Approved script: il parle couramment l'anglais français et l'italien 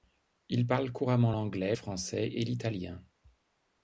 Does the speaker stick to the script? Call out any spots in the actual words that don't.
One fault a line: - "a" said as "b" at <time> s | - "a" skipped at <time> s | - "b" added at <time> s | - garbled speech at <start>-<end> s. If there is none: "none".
none